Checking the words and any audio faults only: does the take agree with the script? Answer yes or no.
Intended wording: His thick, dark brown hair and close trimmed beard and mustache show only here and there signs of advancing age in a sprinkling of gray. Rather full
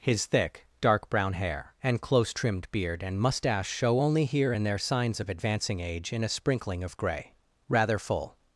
yes